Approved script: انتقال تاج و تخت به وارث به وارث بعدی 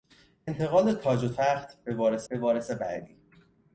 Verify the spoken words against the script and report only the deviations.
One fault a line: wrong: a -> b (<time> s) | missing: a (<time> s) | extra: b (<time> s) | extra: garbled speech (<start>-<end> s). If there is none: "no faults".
no faults